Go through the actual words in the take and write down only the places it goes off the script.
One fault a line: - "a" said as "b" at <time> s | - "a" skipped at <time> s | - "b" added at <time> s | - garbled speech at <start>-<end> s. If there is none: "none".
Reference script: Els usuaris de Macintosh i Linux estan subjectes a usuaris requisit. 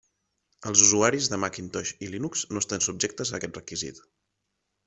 - "no" added at 2.5 s
- "usuaris" said as "aquest" at 3.4 s